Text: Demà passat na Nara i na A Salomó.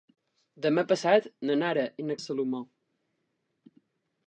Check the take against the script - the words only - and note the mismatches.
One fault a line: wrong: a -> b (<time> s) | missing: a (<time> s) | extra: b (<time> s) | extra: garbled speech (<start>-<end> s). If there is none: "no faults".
no faults